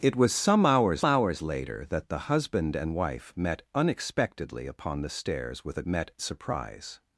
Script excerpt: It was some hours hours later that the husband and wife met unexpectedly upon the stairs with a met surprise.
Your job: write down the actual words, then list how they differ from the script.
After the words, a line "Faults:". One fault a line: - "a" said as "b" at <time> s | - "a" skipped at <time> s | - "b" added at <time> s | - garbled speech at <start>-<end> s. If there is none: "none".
It was some hours hours later that the husband and wife met unexpectedly upon the stairs with a met surprise.
Faults:
none